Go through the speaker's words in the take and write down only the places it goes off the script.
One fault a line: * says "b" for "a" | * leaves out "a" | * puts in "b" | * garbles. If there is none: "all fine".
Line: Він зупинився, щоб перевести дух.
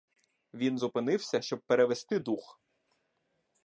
all fine